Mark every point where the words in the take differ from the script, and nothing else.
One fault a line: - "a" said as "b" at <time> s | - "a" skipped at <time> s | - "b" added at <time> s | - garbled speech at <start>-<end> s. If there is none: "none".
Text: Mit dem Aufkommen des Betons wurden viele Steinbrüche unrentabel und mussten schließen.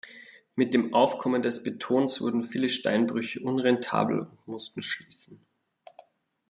none